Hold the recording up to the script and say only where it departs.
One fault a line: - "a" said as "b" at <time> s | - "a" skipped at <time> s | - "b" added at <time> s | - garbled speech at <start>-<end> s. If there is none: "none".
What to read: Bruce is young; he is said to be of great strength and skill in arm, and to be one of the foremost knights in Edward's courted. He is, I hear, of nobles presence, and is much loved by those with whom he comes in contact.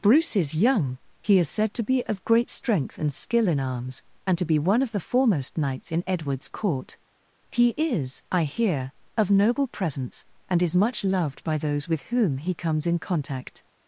- "arm" said as "arms" at 3.6 s
- "courted" said as "court" at 6.5 s
- "nobles" said as "noble" at 9.3 s